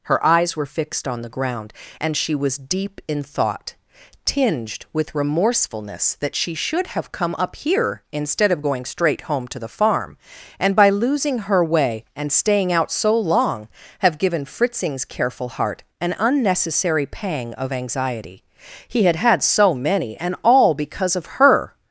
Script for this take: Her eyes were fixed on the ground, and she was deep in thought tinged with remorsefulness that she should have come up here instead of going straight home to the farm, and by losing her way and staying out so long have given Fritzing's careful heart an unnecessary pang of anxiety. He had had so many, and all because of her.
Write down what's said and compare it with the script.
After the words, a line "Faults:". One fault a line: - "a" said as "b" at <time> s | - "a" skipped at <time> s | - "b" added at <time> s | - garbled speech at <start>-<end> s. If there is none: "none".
Her eyes were fixed on the ground, and she was deep in thought tinged with remorsefulness that she should have come up here instead of going straight home to the farm, and by losing her way and staying out so long have given Fritzing's careful heart an unnecessary pang of anxiety. He had had so many, and all because of her.
Faults:
none